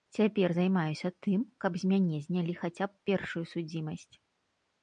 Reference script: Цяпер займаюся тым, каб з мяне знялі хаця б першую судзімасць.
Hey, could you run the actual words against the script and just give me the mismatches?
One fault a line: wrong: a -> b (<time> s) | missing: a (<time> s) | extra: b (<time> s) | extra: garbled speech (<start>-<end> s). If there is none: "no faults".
no faults